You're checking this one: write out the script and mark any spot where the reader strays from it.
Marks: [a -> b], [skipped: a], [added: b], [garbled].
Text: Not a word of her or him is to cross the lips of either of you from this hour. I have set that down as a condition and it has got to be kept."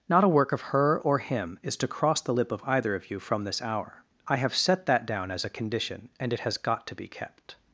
Not a [word -> work] of her or him is to cross the [lips -> lip] of either of you from this hour. I have set that down as a condition and it has got to be kept."